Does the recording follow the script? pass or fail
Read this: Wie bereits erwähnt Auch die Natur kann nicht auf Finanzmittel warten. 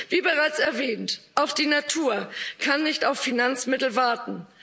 pass